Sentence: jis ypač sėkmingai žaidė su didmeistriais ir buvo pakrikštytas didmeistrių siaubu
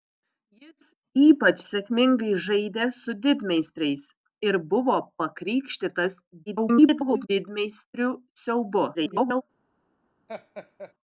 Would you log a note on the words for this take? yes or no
yes